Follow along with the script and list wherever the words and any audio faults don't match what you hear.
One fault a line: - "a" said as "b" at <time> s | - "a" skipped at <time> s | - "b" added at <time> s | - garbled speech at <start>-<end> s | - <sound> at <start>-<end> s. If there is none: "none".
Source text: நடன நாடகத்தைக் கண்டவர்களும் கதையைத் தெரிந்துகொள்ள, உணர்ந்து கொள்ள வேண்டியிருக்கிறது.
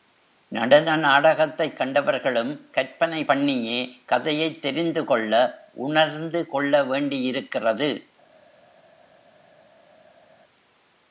- "கற்பனை பண்ணியே" added at 2.7 s